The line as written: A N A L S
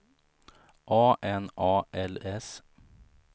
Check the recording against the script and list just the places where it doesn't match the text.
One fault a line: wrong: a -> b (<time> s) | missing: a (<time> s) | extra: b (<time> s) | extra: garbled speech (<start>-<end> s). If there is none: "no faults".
no faults